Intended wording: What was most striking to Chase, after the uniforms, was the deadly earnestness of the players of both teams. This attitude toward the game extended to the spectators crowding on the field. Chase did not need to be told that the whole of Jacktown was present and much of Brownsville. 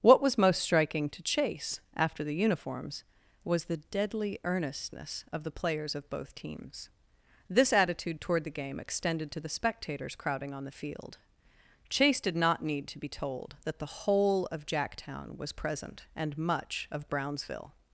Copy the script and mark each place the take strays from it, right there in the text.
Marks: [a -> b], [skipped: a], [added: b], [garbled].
What was most striking to Chase, after the uniforms, was the deadly earnestness of the players of both teams. This attitude toward the game extended to the spectators crowding on the field. Chase did not need to be told that the whole of Jacktown was present and much of Brownsville.